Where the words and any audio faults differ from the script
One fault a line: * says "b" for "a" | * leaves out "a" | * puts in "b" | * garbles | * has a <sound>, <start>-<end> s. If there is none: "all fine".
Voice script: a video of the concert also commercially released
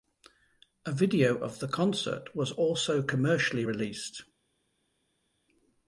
* puts in "was"